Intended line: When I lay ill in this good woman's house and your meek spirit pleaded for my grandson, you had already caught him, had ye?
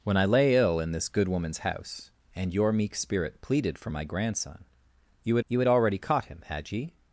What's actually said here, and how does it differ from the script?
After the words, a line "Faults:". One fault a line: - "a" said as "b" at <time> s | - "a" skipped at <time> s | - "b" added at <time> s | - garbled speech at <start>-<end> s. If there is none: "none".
When I lay ill in this good woman's house and your meek spirit pleaded for my grandson, you had you had already caught him, had ye?
Faults:
- "you had" added at 5.5 s